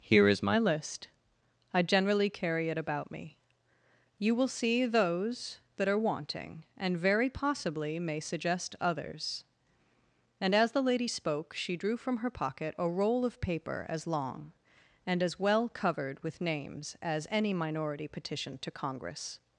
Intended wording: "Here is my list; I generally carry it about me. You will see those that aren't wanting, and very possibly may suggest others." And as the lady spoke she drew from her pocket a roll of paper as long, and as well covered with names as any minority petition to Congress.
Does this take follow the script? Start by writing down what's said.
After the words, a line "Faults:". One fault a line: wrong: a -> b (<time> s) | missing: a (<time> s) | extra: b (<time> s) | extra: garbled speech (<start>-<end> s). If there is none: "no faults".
"Here is my list; I generally carry it about me. You will see those that are wanting, and very possibly may suggest others." And as the lady spoke she drew from her pocket a roll of paper as long, and as well covered with names as any minority petition to Congress.
Faults:
wrong: aren't -> are (5.9 s)